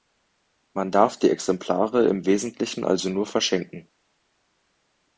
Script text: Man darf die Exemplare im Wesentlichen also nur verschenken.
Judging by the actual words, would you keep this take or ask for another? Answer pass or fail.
pass